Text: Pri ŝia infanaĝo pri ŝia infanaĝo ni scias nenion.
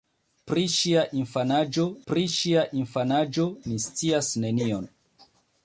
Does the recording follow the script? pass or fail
pass